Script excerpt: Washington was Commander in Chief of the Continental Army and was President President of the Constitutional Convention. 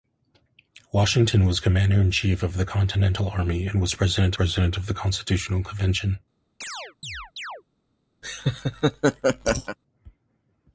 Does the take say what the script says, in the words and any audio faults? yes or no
no